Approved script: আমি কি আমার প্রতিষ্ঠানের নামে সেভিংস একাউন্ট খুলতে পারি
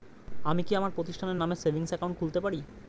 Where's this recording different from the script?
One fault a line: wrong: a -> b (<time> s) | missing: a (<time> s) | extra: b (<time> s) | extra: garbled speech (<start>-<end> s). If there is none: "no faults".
no faults